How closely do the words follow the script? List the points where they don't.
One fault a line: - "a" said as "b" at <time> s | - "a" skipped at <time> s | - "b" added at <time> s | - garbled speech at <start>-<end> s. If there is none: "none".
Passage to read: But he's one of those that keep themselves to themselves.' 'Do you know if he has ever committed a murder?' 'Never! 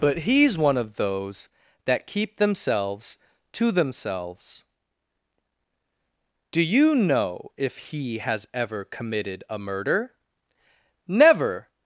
none